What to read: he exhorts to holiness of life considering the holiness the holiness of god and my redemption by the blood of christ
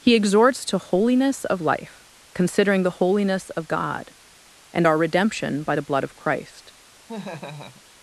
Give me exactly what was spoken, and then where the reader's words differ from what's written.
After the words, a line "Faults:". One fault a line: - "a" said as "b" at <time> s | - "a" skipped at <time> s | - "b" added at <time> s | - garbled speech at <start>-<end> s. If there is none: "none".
he exhorts to holiness of life considering the holiness of god and our redemption by the blood of christ
Faults:
- "the holiness" skipped at 3.5 s
- "my" said as "our" at 4.8 s